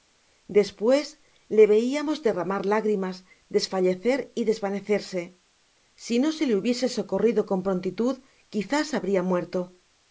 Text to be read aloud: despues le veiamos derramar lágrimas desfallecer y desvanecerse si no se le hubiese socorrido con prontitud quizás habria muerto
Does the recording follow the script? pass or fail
pass